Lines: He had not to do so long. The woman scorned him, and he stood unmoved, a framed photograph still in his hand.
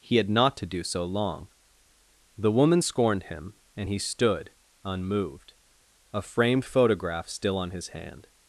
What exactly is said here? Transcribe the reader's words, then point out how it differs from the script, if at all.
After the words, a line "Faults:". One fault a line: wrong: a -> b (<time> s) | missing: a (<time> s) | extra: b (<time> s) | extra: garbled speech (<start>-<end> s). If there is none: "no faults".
He had not to do so long. The woman scorned him, and he stood unmoved, a framed photograph still on his hand.
Faults:
wrong: in -> on (7.6 s)